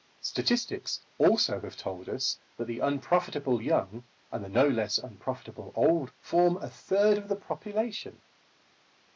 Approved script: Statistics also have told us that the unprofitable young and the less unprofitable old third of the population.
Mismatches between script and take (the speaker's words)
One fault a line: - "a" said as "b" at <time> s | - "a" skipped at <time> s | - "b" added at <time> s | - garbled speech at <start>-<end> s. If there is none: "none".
- "no" added at 4.5 s
- "form a" added at 6.2 s